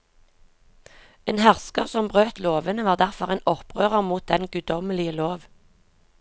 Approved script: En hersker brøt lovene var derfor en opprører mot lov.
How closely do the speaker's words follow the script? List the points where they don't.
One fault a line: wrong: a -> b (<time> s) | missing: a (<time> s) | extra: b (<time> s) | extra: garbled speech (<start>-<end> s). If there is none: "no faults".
extra: som (1.9 s)
extra: den guddommelige (4.3 s)